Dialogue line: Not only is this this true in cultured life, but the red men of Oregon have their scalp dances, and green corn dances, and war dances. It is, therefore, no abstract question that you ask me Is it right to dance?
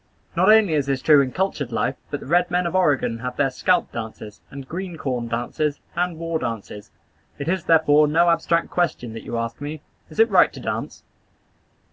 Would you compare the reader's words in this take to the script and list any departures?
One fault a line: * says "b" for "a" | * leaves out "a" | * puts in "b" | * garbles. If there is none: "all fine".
* leaves out "this"